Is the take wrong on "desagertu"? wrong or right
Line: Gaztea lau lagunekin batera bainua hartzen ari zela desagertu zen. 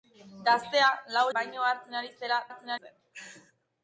wrong